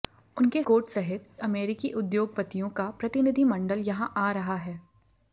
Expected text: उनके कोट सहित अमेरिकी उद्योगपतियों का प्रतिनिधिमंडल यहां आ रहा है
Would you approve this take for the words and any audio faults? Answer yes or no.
yes